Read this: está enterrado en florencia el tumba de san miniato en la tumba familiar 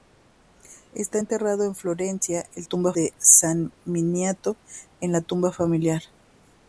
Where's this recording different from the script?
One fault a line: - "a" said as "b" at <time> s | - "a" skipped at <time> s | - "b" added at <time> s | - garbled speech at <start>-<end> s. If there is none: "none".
none